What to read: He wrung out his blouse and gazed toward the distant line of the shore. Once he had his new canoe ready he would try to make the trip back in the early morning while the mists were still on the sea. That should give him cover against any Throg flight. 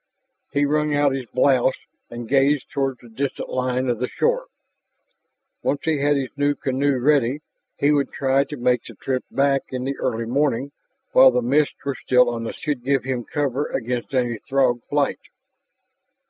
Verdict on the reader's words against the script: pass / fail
fail